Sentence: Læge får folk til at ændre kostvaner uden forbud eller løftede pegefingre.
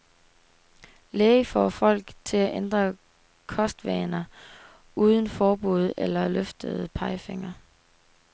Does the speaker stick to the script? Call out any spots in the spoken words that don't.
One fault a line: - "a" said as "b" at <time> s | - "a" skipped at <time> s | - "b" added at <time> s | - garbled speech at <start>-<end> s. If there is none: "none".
none